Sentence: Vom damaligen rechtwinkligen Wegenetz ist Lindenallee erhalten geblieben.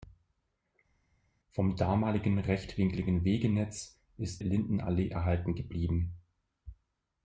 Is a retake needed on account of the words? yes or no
no